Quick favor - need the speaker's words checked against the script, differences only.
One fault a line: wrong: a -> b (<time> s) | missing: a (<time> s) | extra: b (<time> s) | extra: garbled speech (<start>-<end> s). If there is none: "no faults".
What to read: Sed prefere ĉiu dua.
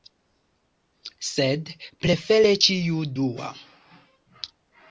no faults